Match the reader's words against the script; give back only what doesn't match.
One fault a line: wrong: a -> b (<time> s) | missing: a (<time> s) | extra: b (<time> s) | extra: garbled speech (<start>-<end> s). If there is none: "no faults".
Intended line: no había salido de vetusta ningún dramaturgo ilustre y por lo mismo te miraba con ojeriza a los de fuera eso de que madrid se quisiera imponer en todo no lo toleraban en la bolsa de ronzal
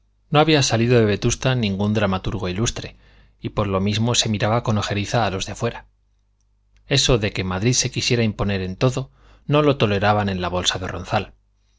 wrong: te -> se (4.2 s)